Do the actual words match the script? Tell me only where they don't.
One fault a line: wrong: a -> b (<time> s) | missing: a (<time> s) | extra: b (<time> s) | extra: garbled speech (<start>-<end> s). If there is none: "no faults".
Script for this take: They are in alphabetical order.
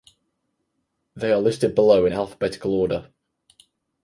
extra: listed below (1.4 s)